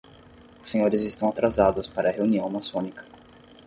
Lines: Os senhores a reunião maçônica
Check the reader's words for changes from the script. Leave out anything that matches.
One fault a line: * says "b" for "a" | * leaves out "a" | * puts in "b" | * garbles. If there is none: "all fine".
* puts in "estão atrasados para"